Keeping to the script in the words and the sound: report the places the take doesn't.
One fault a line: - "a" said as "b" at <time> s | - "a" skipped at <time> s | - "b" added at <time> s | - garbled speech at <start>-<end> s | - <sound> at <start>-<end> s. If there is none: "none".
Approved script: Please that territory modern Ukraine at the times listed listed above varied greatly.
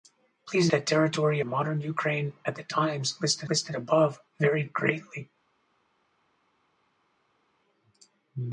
none